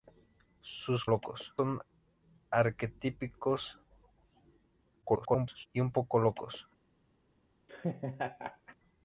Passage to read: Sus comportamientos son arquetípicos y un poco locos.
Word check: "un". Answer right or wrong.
right